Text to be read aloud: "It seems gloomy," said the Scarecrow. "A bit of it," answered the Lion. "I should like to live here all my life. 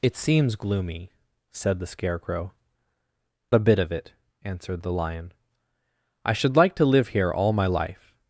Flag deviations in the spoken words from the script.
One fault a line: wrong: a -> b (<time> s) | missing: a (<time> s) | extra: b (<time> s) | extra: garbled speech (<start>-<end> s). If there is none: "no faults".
no faults